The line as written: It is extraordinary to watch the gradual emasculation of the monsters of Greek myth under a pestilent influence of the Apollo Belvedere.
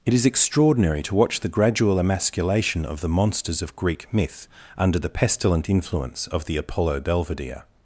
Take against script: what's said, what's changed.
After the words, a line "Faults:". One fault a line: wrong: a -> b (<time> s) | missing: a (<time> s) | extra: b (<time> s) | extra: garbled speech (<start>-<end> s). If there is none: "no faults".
It is extraordinary to watch the gradual emasculation of the monsters of Greek myth under the pestilent influence of the Apollo Belvedere.
Faults:
wrong: a -> the (5.0 s)